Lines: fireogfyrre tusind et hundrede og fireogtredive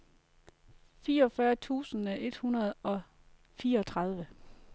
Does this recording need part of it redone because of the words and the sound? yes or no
no